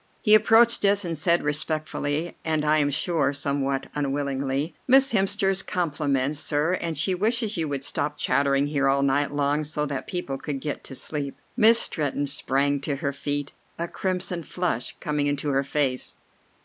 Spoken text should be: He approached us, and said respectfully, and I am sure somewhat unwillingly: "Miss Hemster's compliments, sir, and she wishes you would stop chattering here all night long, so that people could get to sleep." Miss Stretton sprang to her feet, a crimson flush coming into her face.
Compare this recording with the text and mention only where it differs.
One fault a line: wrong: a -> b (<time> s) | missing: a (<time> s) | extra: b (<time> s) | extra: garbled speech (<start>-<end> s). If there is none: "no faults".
no faults